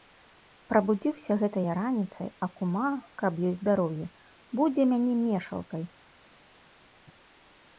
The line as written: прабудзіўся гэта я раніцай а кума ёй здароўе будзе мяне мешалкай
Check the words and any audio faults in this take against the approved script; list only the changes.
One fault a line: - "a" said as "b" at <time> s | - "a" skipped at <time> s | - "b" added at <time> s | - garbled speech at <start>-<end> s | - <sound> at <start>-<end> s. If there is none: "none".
- "каб" added at 3.2 s